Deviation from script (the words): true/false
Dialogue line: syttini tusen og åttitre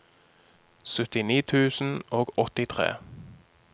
false